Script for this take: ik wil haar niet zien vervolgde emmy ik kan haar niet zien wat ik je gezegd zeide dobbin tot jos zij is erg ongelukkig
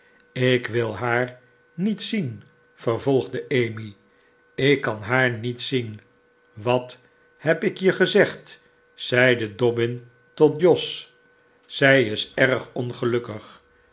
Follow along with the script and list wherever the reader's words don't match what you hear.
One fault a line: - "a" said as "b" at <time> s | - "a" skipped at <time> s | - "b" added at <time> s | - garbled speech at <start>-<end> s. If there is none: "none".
- "heb" added at 7.4 s